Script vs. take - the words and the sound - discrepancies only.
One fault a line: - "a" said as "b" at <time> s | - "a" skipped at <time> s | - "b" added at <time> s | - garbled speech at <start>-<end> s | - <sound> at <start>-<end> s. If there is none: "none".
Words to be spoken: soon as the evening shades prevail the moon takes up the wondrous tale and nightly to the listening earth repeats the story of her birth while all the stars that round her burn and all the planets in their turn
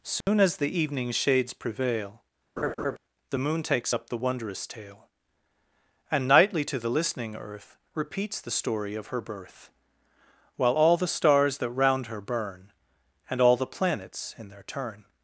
- dropout at 0.2-0.3 s
- laugh at 2.6-3.0 s